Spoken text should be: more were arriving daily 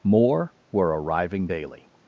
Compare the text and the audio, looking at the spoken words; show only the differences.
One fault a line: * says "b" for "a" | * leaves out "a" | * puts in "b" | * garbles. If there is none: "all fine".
all fine